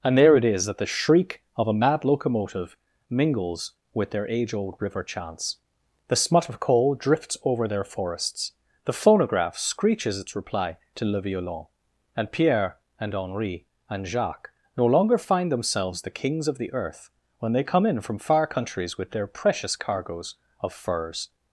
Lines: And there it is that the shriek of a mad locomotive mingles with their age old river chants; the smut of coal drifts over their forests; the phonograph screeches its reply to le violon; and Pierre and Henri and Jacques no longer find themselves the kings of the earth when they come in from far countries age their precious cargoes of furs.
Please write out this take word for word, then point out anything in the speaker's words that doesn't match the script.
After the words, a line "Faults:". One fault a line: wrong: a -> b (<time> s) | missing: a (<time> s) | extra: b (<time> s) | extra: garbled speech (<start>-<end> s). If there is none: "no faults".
And there it is that the shriek of a mad locomotive mingles with their age old river chants; the smut of coal drifts over their forests; the phonograph screeches its reply to le violon; and Pierre and Henri and Jacques no longer find themselves the kings of the earth when they come in from far countries with their precious cargoes of furs.
Faults:
wrong: age -> with (19.0 s)